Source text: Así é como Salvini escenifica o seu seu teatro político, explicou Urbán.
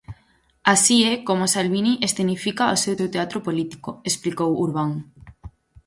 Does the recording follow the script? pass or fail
pass